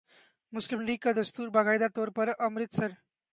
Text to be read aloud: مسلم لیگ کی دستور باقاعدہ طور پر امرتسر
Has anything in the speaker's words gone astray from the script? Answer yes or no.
yes